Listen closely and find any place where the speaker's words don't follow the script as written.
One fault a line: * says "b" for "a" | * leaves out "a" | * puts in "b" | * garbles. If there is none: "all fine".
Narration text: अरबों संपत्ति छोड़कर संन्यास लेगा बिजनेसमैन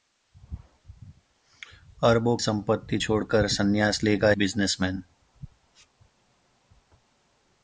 all fine